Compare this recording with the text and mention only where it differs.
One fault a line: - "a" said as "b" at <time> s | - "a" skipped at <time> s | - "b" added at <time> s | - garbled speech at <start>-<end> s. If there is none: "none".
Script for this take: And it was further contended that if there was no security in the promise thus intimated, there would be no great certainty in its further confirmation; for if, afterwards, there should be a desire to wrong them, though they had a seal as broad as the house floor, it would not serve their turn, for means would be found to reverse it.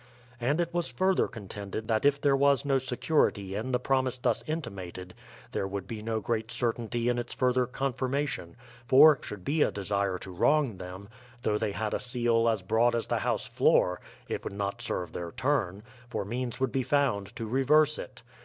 - "if afterwards there" skipped at 9.2 s